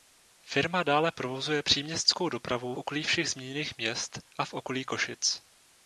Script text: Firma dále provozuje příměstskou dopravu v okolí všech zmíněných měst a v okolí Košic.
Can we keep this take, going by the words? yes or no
no